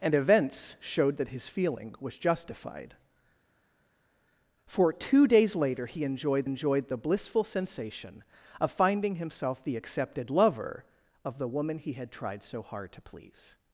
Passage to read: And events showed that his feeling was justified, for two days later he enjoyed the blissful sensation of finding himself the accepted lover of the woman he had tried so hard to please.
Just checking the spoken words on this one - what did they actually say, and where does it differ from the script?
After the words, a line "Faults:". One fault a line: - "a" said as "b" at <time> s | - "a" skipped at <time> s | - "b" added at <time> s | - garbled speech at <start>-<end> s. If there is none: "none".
And events showed that his feeling was justified, for two days later he enjoyed enjoyed the blissful sensation of finding himself the accepted lover of the woman he had tried so hard to please.
Faults:
- "enjoyed" added at 6.4 s